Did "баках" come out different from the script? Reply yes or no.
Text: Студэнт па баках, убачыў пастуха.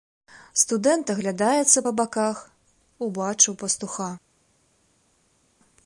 no